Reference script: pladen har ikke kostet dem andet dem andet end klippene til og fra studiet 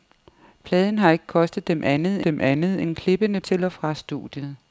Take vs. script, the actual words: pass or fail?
pass